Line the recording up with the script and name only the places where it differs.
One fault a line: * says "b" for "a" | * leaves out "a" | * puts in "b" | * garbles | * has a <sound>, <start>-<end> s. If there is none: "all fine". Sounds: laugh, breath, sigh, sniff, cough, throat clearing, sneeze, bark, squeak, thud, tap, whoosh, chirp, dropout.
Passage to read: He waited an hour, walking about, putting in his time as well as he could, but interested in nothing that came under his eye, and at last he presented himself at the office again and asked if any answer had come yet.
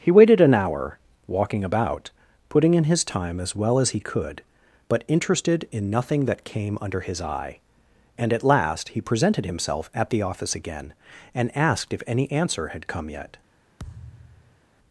* has a thud, 13.8-14.6 s